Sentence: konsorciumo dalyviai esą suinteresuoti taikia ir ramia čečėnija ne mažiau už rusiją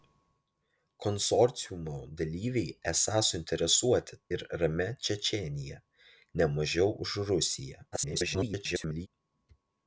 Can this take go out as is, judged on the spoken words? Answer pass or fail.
fail